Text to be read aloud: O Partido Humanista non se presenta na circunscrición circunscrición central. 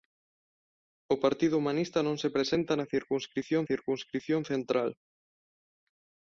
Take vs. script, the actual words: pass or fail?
pass